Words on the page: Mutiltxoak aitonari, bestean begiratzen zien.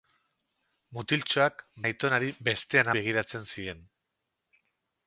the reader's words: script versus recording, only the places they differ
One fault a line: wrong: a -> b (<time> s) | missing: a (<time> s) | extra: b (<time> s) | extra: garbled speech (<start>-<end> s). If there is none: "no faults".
no faults